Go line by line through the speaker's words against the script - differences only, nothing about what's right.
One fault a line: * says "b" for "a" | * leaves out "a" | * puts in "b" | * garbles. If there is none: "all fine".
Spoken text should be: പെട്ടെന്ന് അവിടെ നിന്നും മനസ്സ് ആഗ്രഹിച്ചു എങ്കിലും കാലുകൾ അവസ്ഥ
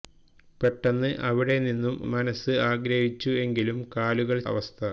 all fine